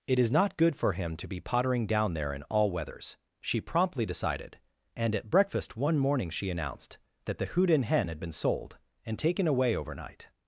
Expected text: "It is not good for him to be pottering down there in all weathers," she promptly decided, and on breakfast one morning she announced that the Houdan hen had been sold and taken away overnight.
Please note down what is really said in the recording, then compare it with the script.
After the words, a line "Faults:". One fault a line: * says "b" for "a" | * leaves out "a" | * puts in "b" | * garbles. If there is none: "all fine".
"It is not good for him to be pottering down there in all weathers," she promptly decided, and at breakfast one morning she announced that the Houdan hen had been sold and taken away overnight.
Faults:
* says "at" for "on"